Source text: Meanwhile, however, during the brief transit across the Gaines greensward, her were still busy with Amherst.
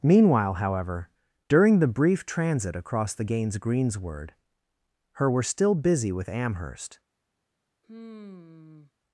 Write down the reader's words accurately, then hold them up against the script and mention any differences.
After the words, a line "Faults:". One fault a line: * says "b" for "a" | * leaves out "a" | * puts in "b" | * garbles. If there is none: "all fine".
Meanwhile, however, during the brief transit across the Gaines greensward, her were still busy with Amherst.
Faults:
all fine